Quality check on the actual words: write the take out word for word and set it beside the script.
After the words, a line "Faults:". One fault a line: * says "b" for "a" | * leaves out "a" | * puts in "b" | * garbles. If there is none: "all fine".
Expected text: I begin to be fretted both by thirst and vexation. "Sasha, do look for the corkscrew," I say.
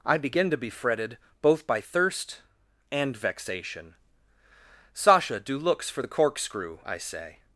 I begin to be fretted both by thirst and vexation. "Sasha, do looks for the corkscrew," I say.
Faults:
* says "looks" for "look"